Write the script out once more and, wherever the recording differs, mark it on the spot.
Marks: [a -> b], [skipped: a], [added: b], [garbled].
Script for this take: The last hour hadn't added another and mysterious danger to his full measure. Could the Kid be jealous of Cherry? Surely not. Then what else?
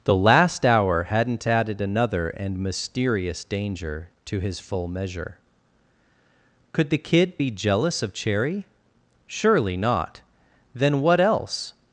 The last hour hadn't added another and mysterious danger to his full measure. Could the Kid be jealous of Cherry? Surely not. Then what else?